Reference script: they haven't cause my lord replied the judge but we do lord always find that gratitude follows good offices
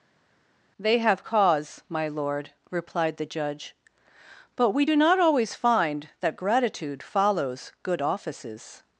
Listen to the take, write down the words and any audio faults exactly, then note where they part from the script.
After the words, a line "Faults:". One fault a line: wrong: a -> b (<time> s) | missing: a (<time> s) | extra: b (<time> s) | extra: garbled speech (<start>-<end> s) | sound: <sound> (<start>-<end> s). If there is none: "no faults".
they have cause my lord replied the judge but we do not always find that gratitude follows good offices
Faults:
wrong: haven't -> have (1.0 s)
wrong: lord -> not (4.9 s)